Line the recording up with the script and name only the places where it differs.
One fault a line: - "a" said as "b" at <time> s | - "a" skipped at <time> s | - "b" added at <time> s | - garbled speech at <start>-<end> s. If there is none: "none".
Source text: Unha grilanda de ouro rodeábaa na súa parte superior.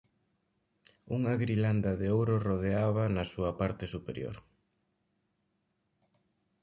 none